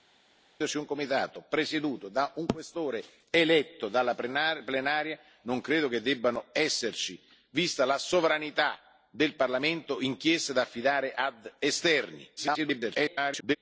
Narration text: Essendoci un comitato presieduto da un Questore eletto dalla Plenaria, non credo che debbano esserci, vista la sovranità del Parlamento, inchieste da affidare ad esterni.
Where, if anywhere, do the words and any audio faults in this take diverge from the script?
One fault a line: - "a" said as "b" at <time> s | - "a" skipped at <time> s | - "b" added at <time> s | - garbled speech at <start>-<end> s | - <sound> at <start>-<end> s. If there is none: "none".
- garbled speech at 12.4-13.6 s